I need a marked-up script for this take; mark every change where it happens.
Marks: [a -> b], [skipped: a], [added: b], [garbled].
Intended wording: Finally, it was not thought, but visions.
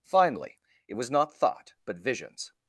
Finally, it was not thought, but visions.